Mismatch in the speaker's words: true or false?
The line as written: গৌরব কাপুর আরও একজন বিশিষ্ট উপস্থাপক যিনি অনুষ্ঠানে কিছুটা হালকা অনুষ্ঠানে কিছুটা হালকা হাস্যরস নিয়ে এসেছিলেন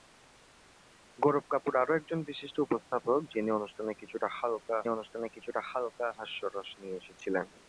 false